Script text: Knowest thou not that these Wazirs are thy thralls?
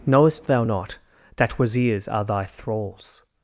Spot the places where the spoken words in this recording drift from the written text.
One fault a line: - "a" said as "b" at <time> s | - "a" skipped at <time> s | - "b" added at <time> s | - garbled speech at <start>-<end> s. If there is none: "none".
- "these" skipped at 1.6 s